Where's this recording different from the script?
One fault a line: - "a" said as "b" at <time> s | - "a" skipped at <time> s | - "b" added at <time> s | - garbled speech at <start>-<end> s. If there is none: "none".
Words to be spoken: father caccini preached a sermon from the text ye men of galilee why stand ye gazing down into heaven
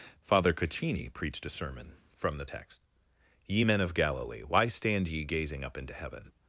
- "down" said as "up" at 5.6 s